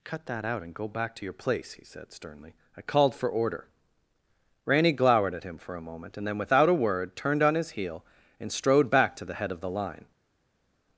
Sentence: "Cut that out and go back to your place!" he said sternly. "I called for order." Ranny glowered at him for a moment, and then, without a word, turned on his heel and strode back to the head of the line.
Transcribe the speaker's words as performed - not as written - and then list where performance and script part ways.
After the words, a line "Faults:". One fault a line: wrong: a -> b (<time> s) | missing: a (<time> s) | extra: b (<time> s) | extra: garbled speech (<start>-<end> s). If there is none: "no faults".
"Cut that out and go back to your place!" he said sternly. "I called for order." Ranny glowered at him for a moment, and then, without a word, turned on his heel and strode back to the head of the line.
Faults:
no faults